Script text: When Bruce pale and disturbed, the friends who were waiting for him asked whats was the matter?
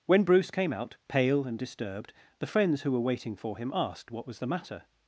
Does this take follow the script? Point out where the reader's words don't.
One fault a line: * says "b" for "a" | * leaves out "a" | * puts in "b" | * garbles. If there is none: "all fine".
* puts in "came out"
* says "what" for "whats"